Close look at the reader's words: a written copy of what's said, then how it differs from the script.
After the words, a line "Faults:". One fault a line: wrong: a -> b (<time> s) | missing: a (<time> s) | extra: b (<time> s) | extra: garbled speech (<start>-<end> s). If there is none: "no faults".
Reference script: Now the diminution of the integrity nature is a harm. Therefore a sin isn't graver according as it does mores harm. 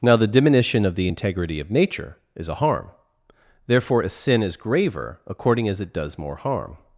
Now the diminution of the integrity of nature is a harm. Therefore a sin is graver according as it does more harm.
Faults:
extra: of (1.6 s)
wrong: isn't -> is (4.4 s)
wrong: mores -> more (6.2 s)